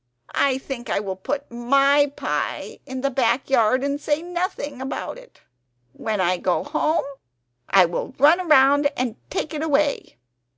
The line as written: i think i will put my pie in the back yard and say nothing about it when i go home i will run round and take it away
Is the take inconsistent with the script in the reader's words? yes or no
no